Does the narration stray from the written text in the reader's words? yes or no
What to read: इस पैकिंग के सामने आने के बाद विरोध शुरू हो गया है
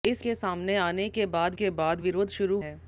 yes